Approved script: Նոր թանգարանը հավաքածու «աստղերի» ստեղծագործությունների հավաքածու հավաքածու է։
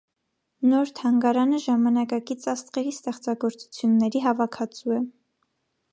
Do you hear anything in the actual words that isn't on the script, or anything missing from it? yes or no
yes